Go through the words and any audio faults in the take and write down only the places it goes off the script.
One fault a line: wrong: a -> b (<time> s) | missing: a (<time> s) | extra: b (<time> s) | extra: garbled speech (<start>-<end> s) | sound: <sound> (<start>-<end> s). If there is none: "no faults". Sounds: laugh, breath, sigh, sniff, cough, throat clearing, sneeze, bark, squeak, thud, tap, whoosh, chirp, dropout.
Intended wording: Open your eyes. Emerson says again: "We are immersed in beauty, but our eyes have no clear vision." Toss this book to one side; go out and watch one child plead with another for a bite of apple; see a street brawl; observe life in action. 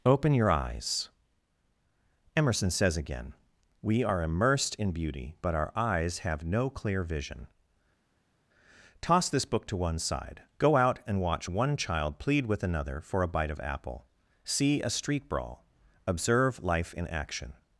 no faults